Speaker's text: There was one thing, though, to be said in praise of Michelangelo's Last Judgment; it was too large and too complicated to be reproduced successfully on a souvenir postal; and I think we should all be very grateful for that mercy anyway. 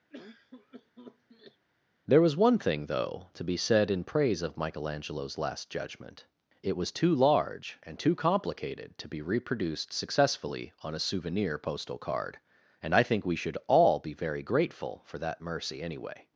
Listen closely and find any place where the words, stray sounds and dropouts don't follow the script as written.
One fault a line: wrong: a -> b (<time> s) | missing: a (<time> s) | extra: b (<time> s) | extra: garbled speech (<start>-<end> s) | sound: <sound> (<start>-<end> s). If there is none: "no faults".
sound: cough (0.1-1.7 s)
extra: card (12.0 s)